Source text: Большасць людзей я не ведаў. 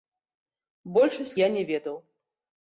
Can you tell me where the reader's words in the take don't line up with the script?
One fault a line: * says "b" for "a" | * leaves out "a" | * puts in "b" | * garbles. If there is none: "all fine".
* leaves out "людзей"